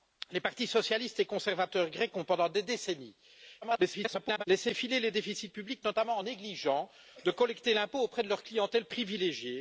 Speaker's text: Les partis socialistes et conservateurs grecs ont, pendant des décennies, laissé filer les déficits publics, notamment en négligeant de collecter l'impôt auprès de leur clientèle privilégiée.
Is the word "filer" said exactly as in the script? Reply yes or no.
yes